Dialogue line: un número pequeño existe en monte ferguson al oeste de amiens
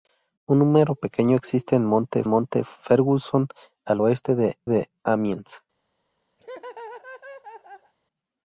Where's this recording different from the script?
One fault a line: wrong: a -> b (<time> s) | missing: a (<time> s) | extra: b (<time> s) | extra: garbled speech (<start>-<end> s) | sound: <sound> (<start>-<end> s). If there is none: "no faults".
extra: monte (2.3 s)
extra: de (4.7 s)
sound: laugh (6.4-7.9 s)